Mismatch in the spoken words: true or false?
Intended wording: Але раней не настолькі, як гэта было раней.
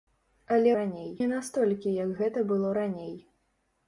false